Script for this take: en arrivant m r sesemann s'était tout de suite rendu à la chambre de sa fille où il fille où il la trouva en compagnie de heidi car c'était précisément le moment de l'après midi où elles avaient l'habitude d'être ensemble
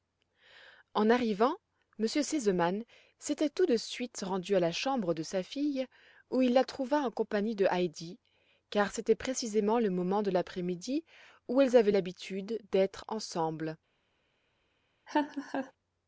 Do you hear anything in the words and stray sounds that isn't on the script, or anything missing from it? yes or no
yes